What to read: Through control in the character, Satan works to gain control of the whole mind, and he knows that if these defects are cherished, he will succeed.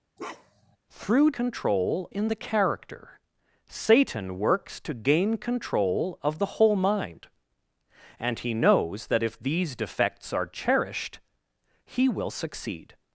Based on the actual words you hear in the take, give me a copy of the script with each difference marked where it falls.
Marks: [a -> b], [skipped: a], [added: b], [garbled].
Through control in the character, Satan works to gain control of the whole mind, and he knows that if these defects are cherished, he will succeed.